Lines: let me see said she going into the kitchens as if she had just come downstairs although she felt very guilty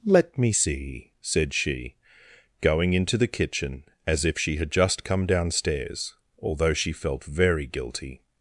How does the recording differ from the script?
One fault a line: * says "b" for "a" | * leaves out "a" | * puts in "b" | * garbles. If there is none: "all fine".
* says "kitchen" for "kitchens"